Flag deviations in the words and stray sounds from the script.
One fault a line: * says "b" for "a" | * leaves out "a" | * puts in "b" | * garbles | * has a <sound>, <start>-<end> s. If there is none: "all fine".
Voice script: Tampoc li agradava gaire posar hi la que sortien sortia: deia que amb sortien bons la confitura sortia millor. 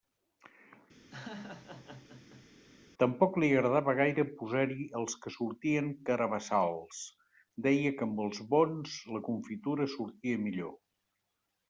* has a laugh, 1.1-2.5 s
* says "els" for "la"
* says "carabassals" for "sortia"
* says "els" for "sortien"